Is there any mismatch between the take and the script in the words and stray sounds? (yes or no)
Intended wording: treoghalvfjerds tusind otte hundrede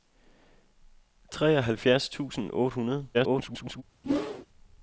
yes